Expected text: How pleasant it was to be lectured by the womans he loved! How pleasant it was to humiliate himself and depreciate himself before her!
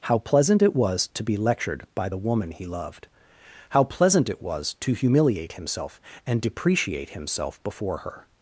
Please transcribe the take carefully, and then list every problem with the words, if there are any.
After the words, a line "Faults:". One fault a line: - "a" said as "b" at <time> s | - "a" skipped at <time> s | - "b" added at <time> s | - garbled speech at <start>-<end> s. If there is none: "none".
How pleasant it was to be lectured by the woman he loved! How pleasant it was to humiliate himself and depreciate himself before her!
Faults:
- "womans" said as "woman" at 2.2 s